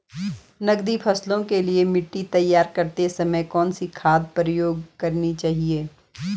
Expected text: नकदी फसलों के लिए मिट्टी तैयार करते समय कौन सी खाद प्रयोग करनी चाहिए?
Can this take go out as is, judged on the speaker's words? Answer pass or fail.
pass